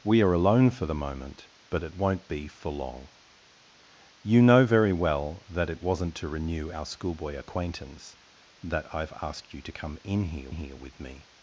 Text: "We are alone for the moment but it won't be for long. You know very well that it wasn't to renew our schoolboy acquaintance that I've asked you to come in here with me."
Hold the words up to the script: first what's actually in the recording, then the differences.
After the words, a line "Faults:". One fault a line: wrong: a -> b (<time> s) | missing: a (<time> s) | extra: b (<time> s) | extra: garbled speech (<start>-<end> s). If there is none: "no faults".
"We are alone for the moment but it won't be for long. You know very well that it wasn't to renew our schoolboy acquaintance that I've asked you to come in here here with me."
Faults:
extra: here (10.5 s)